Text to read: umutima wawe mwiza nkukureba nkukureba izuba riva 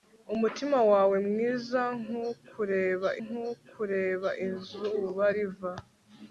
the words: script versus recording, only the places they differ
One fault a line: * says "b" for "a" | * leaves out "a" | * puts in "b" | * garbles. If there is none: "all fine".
all fine